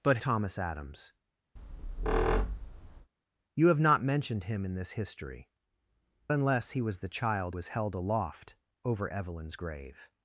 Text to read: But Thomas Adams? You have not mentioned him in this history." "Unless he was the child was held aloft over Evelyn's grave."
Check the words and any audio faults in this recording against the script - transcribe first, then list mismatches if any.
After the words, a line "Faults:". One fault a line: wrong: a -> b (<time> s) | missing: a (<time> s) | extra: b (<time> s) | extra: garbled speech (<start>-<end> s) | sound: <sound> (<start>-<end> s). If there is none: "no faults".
But Thomas Adams? You have not mentioned him in this history." "Unless he was the child was held aloft over Evelyn's grave."
Faults:
sound: squeak (1.6-3.1 s)